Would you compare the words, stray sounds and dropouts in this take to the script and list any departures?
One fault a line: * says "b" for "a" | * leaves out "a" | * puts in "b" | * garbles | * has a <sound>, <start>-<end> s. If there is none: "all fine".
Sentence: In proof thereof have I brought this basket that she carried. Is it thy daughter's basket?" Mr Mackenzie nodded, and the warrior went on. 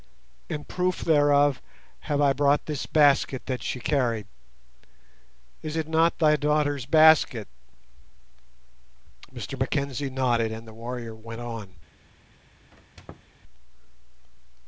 * puts in "not"
* has a squeak, 12.7-13.3 s